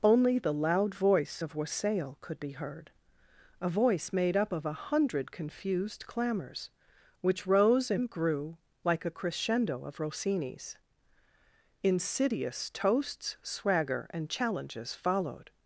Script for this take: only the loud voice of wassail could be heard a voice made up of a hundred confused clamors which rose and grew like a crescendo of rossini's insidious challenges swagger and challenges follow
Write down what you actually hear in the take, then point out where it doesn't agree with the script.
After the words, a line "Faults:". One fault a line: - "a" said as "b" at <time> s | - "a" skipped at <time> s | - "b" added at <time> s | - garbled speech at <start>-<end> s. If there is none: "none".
only the loud voice of wassail could be heard a voice made up of a hundred confused clamors which rose and grew like a crescendo of rossini's insidious toasts swagger and challenges followed
Faults:
- "challenges" said as "toasts" at 12.7 s
- "follow" said as "followed" at 14.9 s